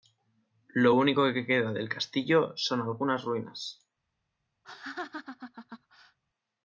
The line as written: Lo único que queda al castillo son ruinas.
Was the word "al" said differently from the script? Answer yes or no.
yes